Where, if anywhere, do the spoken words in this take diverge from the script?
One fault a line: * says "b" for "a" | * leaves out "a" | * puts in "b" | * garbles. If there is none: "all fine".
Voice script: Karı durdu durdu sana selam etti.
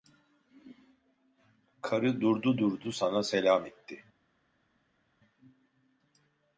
all fine